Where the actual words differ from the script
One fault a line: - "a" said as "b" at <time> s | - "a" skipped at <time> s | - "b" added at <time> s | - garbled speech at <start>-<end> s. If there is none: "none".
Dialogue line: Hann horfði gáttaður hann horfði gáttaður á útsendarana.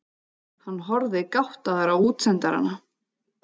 - "hann horfði gáttaður" skipped at 1.9 s